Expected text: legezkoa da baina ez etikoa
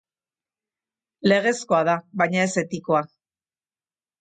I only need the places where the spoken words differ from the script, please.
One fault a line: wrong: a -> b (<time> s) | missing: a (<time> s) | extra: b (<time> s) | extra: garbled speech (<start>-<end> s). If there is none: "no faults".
no faults